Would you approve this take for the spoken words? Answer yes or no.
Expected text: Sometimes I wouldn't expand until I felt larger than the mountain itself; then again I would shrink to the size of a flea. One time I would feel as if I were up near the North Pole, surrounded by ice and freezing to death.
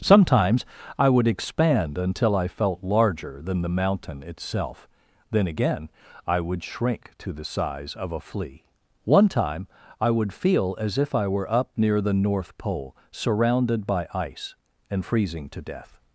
no